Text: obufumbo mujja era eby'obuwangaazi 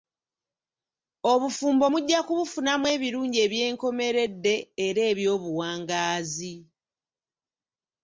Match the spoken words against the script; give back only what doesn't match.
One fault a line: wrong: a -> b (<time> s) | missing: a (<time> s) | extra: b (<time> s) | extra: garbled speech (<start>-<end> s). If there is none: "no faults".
extra: kubufunamu ebirungi eby'enkomeredde (2.3 s)